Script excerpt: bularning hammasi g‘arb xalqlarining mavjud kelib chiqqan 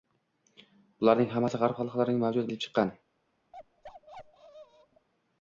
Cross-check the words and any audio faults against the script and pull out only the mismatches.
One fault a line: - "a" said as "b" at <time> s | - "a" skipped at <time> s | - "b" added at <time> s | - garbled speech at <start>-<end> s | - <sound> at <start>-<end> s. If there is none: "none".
- bark at 3.5-5.1 s